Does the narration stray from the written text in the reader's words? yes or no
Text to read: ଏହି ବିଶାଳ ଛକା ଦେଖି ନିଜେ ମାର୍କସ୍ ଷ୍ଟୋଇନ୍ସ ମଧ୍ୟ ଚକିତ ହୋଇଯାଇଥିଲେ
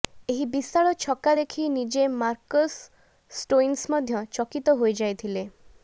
no